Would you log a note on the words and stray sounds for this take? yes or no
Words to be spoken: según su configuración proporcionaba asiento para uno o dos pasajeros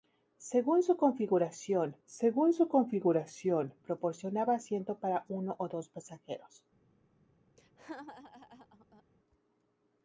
yes